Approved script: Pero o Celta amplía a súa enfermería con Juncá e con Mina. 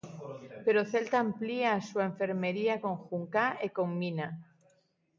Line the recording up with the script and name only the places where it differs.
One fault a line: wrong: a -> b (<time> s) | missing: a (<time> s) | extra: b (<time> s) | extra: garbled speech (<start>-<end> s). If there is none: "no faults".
no faults